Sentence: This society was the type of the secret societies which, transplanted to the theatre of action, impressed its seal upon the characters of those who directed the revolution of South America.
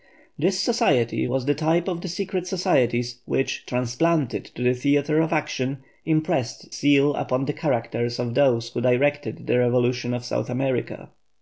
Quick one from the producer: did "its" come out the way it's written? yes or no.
no